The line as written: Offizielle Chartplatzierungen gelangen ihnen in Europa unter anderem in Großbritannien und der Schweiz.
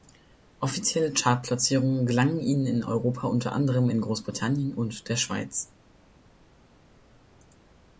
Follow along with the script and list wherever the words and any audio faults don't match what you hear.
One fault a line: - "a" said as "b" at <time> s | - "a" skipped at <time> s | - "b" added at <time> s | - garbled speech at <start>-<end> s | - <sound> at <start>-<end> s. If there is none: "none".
none